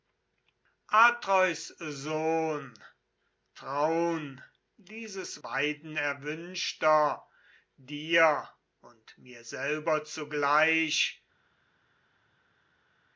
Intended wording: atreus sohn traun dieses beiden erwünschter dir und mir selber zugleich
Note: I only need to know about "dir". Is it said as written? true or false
true